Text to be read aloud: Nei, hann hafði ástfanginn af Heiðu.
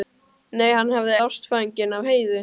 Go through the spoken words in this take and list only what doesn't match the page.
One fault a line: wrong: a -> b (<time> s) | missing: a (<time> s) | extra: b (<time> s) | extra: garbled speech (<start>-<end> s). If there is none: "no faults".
no faults